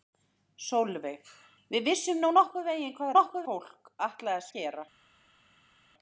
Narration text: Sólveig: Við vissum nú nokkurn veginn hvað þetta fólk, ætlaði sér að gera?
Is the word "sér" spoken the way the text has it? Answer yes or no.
no